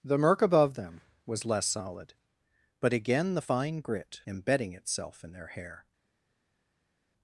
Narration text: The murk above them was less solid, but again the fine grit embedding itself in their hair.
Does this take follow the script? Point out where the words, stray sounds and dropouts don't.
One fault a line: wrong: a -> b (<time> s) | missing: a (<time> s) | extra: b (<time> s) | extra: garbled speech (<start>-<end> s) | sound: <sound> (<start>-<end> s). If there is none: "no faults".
no faults